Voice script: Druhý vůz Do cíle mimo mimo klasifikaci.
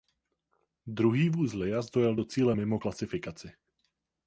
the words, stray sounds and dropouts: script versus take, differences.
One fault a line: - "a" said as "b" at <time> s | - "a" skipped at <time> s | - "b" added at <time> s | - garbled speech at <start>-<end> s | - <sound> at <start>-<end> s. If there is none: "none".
- "Liaz dojel" added at 1.5 s
- "mimo" skipped at 2.8 s